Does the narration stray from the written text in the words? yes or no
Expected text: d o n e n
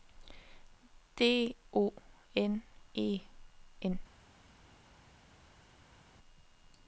no